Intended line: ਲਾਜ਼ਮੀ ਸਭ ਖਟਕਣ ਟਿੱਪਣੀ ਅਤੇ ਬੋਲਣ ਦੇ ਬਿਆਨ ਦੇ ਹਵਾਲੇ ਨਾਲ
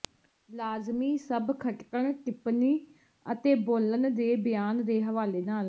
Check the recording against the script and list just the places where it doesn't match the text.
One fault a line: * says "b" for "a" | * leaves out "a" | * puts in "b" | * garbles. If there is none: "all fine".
all fine